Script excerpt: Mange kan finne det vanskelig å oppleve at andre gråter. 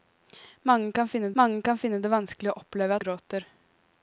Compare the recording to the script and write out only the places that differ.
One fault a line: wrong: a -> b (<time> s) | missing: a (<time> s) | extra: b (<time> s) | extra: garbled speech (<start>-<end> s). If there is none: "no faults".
extra: mange kan finne (1.4 s)
missing: at andre (3.0 s)